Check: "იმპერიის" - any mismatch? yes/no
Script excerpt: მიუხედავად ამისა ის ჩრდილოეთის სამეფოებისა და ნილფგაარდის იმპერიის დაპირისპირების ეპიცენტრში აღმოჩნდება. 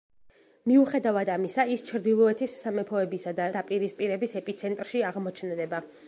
yes